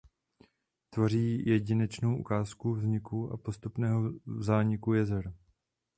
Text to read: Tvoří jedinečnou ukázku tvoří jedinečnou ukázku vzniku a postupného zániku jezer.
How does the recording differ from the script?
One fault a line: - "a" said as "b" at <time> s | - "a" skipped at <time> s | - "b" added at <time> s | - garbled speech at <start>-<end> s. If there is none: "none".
- "tvoří jedinečnou ukázku" skipped at 2.7 s